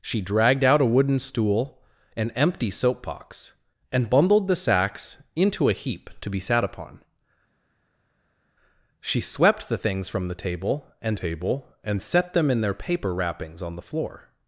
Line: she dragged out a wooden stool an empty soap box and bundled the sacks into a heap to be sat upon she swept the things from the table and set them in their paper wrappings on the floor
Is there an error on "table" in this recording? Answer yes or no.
no